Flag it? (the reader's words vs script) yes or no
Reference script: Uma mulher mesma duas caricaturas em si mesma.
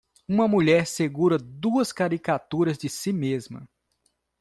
yes